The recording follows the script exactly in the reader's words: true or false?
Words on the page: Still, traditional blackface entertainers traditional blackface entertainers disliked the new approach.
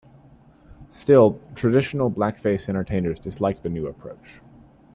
false